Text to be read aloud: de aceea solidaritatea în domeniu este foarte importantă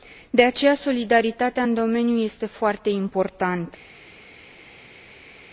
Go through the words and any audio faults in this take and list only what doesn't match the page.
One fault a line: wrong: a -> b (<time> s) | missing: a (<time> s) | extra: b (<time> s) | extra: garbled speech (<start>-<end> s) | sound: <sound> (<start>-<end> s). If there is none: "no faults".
no faults